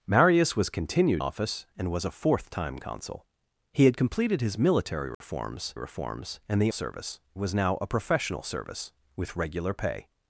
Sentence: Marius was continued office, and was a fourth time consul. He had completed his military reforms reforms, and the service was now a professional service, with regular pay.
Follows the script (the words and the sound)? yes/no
no